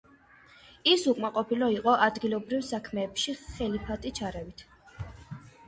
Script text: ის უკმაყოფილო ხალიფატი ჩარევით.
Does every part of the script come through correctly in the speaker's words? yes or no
no